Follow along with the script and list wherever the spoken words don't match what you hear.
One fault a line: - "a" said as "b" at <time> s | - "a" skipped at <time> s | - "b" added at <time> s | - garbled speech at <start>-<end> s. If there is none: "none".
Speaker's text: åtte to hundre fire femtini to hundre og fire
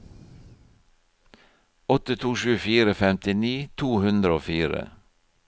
- "hundre" said as "sju" at 2.4 s